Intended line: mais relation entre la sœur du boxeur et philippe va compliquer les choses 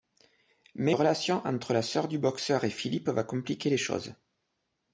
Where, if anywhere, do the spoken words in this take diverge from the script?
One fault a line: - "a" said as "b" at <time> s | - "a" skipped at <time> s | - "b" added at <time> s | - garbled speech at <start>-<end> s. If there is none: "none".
none